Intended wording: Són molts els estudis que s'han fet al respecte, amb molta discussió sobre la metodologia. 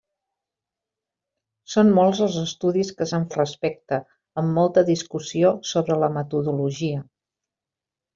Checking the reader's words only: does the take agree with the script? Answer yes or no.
no